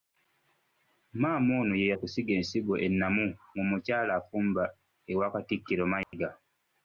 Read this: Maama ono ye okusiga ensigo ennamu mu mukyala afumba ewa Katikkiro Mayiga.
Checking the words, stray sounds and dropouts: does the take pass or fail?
fail